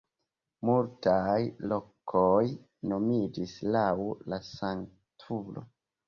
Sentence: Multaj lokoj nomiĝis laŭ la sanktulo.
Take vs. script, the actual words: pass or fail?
pass